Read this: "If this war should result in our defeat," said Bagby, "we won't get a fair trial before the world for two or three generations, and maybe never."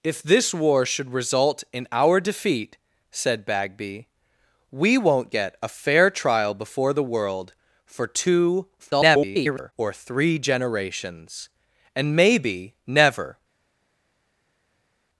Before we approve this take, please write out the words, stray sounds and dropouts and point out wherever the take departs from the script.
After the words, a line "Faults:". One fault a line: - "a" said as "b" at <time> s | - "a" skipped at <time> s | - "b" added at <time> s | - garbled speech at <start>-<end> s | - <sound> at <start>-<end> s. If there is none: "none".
"If this war should result in our defeat," said Bagby, "we won't get a fair trial before the world for two [garbled] or three generations, and maybe never."
Faults:
- garbled speech at 8.8-9.7 s